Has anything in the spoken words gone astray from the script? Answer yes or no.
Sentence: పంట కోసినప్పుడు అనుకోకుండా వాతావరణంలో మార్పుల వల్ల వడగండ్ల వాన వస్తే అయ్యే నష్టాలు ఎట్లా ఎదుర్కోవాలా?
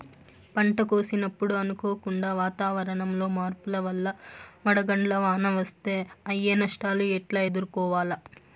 no